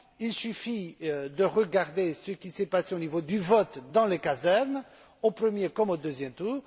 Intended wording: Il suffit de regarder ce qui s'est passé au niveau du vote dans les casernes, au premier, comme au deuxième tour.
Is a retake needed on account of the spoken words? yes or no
no